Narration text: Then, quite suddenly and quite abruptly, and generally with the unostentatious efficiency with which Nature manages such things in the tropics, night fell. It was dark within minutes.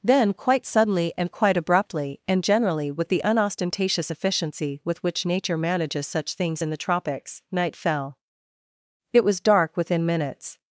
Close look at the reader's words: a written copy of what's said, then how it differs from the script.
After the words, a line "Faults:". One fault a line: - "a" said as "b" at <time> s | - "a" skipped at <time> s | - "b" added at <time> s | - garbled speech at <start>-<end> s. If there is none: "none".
Then, quite suddenly and quite abruptly, and generally with the unostentatious efficiency with which Nature manages such things in the tropics, night fell. It was dark within minutes.
Faults:
none